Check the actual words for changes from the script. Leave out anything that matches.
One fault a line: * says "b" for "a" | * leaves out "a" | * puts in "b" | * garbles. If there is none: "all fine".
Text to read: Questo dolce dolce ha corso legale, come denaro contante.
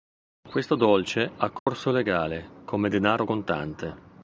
* leaves out "dolce"